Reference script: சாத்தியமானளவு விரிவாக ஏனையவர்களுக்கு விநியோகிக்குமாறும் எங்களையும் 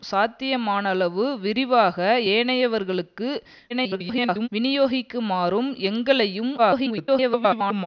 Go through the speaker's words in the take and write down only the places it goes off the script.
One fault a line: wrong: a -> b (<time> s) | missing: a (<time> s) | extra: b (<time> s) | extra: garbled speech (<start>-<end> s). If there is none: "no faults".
extra: garbled speech (3.7-4.5 s)
extra: garbled speech (6.6-7.9 s)